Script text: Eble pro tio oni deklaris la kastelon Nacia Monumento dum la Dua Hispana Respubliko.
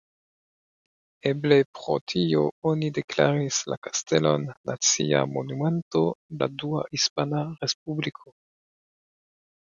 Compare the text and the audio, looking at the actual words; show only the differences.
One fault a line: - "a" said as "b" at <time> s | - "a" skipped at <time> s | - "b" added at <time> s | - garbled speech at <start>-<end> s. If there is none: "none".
- "dum" skipped at 6.0 s